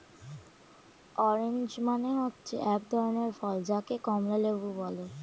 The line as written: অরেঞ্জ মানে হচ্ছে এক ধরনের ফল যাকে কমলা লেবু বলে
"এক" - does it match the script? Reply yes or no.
yes